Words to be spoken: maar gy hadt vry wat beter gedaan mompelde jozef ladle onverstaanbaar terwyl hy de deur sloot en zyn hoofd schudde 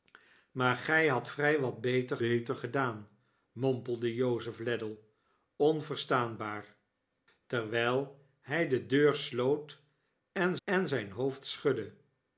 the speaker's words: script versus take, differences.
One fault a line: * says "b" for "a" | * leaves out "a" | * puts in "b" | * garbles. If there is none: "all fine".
* puts in "beter"
* puts in "en"